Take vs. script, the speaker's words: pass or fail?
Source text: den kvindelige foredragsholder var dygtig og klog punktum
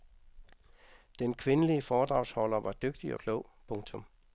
pass